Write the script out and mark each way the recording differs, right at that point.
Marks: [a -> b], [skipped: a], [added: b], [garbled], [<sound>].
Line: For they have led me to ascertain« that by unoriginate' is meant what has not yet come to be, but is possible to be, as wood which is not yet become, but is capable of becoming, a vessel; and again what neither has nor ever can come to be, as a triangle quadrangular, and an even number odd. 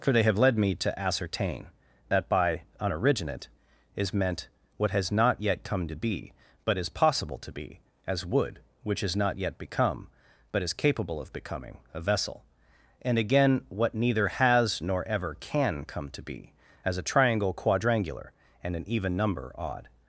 For they have led me to ascertain« that by unoriginate' is meant what has not yet come to be, but is possible to be, as wood which is not yet become, but is capable of becoming, a vessel; and again what neither has nor ever can come to be, as a triangle quadrangular, and an even number odd.